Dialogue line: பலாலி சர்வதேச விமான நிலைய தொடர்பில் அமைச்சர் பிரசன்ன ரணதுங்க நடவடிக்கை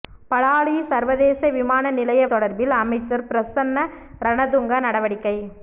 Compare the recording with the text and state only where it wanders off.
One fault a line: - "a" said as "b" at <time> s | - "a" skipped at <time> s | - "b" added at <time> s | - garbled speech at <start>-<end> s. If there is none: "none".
none